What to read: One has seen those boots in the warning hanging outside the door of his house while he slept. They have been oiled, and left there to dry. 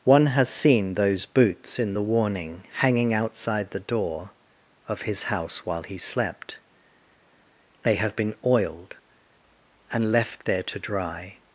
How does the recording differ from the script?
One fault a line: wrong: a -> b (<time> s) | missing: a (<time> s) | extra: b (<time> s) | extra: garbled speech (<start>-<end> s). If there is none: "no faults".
no faults